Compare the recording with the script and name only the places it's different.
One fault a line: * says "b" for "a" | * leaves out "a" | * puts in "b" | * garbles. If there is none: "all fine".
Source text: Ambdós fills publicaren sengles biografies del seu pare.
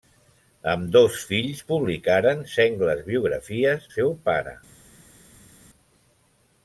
* leaves out "del"